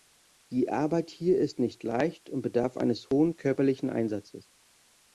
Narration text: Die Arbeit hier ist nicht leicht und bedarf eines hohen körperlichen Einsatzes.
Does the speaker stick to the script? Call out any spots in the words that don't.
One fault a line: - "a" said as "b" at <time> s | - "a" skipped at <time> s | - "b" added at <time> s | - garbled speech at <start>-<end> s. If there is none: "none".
none